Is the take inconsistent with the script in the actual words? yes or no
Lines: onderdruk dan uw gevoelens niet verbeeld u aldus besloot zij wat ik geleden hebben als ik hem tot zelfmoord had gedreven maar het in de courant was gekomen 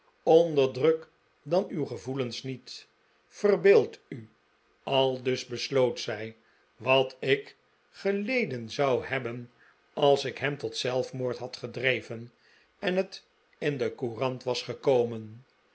yes